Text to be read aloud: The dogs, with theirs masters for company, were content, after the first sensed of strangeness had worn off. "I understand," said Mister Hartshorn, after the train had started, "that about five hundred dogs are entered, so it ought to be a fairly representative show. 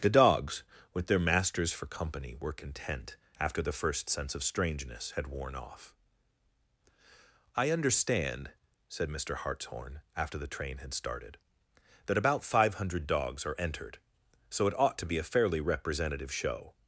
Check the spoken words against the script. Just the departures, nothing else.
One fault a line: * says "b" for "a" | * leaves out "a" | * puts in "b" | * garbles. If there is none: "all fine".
* says "their" for "theirs"
* says "sense" for "sensed"